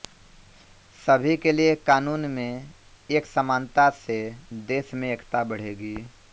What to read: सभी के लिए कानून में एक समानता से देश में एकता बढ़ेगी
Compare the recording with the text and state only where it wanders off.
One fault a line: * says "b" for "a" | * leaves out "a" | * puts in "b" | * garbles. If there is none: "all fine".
all fine